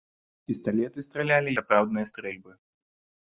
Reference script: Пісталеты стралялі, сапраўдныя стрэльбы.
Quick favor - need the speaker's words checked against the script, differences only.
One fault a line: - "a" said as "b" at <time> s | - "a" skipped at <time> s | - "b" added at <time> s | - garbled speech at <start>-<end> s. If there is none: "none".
none